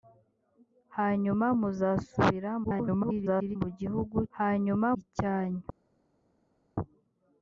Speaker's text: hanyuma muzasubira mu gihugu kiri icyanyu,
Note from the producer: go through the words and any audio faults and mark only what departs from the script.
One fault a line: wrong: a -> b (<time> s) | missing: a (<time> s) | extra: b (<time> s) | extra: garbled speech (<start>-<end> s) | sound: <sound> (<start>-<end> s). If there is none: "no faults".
extra: garbled speech (2.6-3.6 s)
wrong: kiri -> hanyuma (4.4 s)